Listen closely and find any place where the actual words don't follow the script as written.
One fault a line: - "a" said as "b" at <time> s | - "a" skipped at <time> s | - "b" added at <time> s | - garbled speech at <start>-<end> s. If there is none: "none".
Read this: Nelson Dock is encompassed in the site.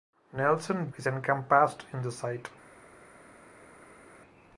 - "Dock" skipped at 0.9 s